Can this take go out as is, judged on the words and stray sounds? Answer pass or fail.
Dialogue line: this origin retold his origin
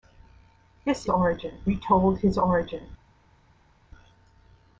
pass